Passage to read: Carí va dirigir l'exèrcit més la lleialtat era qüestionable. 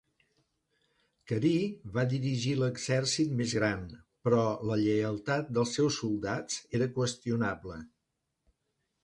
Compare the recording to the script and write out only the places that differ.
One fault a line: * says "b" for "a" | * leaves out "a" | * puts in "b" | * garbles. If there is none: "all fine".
* puts in "gran però"
* puts in "dels seus soldats"